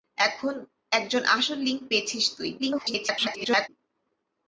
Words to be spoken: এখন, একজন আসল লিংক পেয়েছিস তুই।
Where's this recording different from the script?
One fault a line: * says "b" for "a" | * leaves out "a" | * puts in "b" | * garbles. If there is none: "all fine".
* garbles